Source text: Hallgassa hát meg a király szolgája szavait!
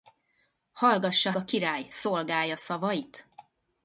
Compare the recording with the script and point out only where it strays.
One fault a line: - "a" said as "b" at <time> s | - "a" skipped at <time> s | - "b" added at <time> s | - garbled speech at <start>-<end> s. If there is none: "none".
- "hát meg" skipped at 1.3 s